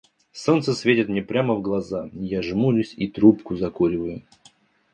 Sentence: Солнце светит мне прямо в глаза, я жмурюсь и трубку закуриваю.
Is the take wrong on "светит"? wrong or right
right